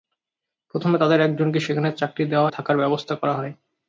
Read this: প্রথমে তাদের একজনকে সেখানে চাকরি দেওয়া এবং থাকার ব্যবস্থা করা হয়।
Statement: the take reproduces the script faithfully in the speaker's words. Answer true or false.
false